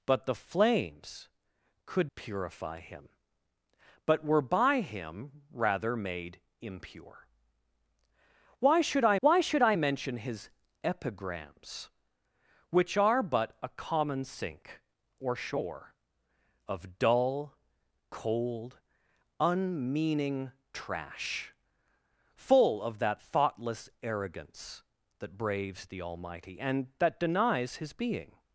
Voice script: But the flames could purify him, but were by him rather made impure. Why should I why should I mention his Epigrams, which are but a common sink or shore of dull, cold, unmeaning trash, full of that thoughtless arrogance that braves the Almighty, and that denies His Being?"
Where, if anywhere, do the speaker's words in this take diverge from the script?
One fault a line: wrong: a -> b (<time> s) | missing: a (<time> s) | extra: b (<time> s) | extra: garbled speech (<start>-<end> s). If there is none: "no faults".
no faults